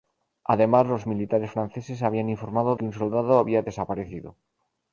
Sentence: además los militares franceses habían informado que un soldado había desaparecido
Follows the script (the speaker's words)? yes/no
yes